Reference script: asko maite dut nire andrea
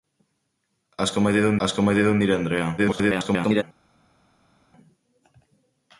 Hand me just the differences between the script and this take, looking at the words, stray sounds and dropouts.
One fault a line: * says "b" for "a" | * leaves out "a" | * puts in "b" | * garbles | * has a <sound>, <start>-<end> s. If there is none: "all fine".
* puts in "asko maite dut"
* garbles